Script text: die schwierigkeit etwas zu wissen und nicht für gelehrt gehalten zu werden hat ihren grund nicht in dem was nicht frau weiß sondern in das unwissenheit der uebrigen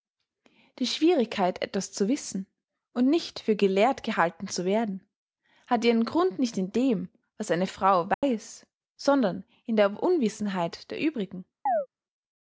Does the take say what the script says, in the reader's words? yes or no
no